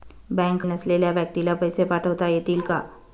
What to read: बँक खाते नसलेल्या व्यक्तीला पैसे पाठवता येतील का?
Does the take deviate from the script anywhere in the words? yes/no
yes